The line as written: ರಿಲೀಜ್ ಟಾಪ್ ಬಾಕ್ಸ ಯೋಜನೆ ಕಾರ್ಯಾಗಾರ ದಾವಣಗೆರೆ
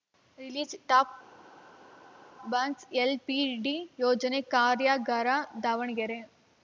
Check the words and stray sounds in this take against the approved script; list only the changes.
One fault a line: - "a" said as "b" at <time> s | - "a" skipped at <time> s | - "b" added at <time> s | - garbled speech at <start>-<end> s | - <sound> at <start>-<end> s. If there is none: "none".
- "ಎಲ್‌ಪಿಇಡಿ" added at 3.0 s